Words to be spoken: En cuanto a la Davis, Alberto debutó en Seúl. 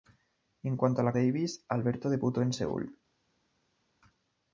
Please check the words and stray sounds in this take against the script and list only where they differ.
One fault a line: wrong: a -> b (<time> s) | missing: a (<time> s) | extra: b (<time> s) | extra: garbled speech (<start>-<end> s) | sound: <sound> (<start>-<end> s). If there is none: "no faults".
no faults